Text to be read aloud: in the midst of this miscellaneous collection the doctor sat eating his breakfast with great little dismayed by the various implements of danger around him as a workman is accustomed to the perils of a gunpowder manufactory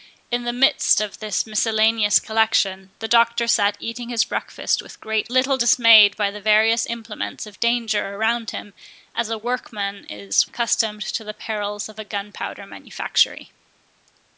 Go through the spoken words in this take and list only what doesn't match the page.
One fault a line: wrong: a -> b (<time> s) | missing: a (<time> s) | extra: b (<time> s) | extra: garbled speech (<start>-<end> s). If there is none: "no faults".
no faults